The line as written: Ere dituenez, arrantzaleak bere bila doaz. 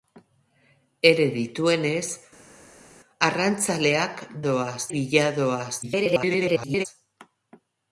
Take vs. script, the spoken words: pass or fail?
fail